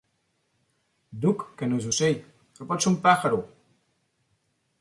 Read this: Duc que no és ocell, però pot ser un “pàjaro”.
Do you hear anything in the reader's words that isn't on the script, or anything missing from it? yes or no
no